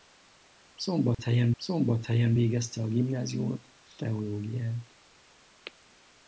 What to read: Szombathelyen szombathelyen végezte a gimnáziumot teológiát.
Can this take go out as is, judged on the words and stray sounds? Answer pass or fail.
fail